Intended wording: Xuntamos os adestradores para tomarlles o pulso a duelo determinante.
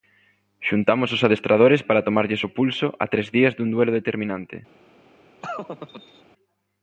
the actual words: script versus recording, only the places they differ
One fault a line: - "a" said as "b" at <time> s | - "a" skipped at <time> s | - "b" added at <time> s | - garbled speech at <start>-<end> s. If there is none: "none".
- "tres días dun" added at 3.1 s